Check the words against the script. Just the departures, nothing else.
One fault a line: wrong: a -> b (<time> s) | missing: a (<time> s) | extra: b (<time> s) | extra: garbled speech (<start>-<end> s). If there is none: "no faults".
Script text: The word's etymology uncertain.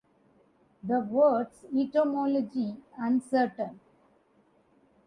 no faults